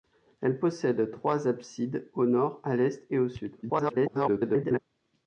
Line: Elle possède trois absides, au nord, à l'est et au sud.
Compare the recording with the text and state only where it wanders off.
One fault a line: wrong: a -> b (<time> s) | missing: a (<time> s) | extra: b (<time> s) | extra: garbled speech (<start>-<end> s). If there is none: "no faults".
extra: garbled speech (3.6-4.8 s)